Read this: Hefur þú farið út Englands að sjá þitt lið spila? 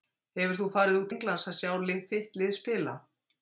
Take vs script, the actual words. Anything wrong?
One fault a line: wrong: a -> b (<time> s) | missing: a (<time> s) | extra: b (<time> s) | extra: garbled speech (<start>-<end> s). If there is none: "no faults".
no faults